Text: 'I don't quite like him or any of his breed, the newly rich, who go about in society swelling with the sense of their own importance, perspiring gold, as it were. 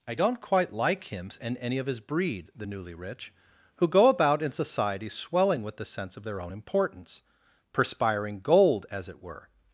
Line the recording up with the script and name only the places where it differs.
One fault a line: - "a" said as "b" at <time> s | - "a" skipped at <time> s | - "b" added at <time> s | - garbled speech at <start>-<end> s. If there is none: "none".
- "or" said as "and" at 1.4 s